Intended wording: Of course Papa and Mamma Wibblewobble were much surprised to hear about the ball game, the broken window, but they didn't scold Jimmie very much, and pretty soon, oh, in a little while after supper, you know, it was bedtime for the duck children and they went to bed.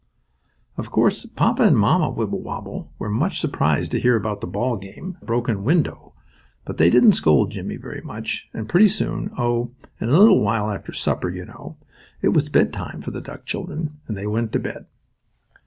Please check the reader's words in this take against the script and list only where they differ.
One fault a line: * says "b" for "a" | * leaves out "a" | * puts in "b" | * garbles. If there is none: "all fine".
all fine